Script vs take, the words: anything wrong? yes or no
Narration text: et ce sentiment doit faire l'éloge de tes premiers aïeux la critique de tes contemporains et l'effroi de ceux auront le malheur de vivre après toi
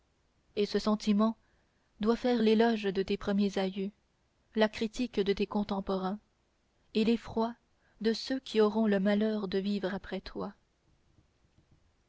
yes